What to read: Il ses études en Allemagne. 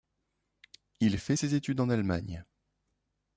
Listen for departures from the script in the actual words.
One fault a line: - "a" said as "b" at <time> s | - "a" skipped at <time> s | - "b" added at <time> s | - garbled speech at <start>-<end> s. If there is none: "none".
- "fait" added at 1.2 s